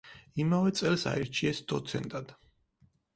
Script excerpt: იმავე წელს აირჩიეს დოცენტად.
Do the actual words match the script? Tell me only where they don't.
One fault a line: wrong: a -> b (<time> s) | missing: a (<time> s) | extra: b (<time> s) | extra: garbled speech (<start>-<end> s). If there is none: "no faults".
no faults